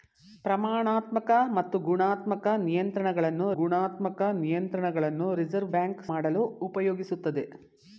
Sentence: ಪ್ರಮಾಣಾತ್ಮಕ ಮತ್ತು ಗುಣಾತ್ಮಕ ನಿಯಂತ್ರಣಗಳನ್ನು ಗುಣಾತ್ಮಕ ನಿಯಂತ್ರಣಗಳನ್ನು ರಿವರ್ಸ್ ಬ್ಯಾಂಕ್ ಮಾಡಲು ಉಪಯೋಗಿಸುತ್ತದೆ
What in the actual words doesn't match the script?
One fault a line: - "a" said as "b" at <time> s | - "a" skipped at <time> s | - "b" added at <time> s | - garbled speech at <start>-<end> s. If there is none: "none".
none